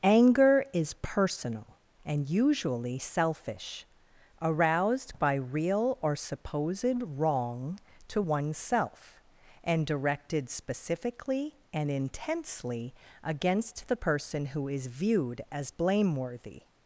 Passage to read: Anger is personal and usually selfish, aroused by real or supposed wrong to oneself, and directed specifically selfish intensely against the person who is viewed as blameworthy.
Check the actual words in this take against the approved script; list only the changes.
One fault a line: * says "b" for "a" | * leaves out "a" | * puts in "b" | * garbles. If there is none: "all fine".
* says "and" for "selfish"